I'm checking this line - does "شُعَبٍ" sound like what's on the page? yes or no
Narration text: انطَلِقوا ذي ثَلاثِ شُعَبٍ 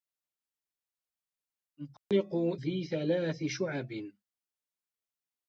yes